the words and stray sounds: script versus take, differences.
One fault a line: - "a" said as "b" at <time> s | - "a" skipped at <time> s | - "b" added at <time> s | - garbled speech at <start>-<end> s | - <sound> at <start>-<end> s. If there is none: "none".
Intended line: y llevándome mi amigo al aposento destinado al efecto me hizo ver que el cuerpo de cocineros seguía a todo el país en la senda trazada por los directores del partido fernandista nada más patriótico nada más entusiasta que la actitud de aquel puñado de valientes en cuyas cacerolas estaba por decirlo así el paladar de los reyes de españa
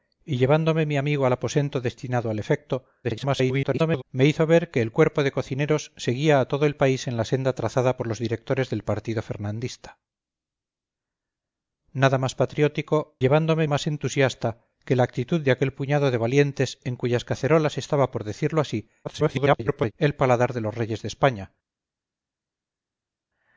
- garbled speech at 3.0-4.0 s
- "nada" said as "llevándome" at 13.2 s
- garbled speech at 19.0-19.9 s